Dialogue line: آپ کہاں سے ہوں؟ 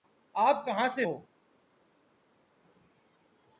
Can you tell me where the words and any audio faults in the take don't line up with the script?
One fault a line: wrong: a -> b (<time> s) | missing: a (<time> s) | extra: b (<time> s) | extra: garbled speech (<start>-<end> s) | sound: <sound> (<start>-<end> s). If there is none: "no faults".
no faults